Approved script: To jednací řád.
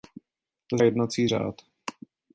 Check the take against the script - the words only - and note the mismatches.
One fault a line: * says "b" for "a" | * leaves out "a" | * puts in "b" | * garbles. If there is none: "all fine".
all fine